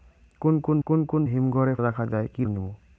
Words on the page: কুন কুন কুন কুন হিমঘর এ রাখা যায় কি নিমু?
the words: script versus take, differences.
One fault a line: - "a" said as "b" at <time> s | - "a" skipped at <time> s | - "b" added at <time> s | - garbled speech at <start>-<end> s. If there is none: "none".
none